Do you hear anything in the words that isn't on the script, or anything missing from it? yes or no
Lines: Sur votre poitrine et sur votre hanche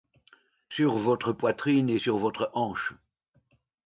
no